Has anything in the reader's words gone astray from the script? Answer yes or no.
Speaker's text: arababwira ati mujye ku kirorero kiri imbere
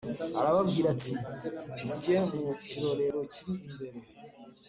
yes